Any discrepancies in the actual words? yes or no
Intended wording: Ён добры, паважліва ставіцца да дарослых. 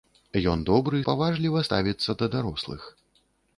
no